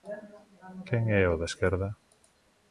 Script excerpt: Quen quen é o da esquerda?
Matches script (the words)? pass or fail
fail